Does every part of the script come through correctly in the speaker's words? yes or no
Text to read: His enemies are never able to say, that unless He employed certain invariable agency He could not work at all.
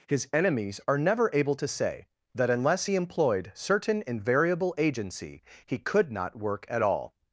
yes